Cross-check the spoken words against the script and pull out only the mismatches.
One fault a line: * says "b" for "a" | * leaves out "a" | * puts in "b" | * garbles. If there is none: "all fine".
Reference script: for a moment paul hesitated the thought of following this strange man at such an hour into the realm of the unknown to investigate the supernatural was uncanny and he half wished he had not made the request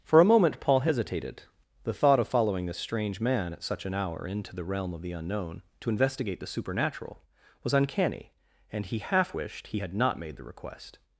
all fine